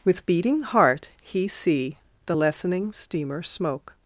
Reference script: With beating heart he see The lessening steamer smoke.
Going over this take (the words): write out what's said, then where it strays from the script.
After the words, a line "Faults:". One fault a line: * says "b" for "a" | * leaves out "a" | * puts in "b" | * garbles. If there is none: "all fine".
With beating heart he see The lessening steamer smoke.
Faults:
all fine